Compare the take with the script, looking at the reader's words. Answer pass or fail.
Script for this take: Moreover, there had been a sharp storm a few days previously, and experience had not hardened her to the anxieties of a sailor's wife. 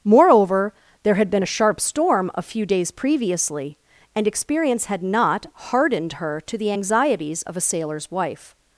pass